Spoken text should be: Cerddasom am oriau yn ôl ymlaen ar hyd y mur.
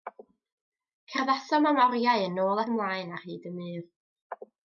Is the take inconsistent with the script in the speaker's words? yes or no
no